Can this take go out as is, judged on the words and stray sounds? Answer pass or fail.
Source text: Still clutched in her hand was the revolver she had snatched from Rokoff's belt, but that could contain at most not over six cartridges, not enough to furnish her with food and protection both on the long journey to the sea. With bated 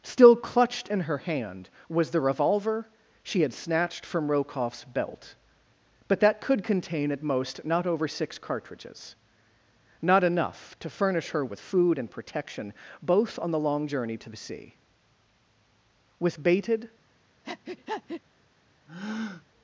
fail